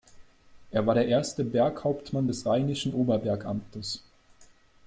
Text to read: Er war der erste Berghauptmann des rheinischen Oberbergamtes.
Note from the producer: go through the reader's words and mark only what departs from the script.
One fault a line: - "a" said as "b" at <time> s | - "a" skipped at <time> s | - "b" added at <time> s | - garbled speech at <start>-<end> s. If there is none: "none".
none